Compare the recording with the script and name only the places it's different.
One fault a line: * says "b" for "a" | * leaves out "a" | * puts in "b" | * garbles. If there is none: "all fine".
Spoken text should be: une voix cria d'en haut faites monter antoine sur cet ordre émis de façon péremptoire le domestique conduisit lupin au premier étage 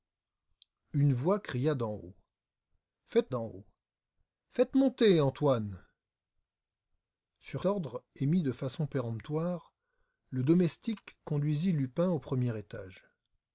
* puts in "d'en haut faites"
* leaves out "cet"